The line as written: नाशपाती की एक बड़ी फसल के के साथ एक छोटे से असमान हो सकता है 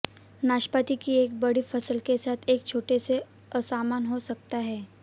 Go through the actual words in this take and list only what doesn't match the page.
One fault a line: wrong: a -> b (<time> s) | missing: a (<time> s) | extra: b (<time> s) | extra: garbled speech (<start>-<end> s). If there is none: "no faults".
missing: के (2.2 s)